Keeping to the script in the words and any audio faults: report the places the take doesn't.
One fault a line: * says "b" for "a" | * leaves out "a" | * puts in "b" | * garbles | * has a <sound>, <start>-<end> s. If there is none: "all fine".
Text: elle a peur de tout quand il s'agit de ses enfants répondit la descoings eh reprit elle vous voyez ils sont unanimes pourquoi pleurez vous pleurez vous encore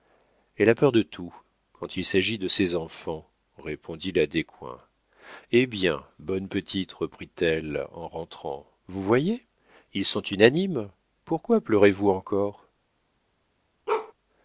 * puts in "bien bonne petite"
* puts in "en rentrant"
* leaves out "pleurez vous"
* has a bark, 13.9-14.1 s